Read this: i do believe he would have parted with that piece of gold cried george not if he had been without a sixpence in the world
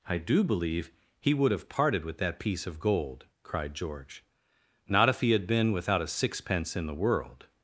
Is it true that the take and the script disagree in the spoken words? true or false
false